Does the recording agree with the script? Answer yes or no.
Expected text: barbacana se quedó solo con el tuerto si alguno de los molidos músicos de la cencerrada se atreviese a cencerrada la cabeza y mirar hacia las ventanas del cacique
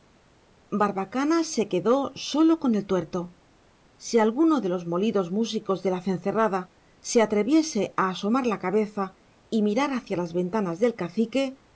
no